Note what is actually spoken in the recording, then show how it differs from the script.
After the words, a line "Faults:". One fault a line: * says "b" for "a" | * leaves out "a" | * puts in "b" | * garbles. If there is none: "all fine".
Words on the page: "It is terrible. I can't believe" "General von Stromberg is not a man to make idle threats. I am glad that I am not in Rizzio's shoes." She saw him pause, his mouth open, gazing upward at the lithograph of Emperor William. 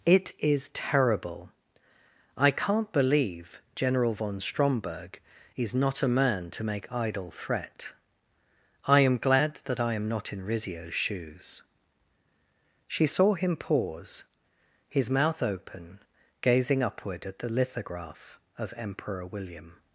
"It is terrible. I can't believe" "General von Stromberg is not a man to make idle threat. I am glad that I am not in Rizzio's shoes." She saw him pause, his mouth open, gazing upward at the lithograph of Emperor William.
Faults:
* says "threat" for "threats"